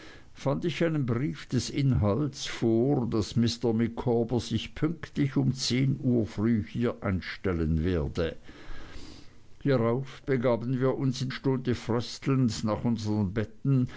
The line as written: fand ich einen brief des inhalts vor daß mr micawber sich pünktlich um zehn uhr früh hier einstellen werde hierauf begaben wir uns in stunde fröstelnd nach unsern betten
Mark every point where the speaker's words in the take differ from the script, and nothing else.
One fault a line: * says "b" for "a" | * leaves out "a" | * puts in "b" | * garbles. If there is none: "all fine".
all fine